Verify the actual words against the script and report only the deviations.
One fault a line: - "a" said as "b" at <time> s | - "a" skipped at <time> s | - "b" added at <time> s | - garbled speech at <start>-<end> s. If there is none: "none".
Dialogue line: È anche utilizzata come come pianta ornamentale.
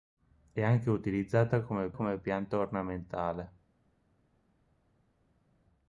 none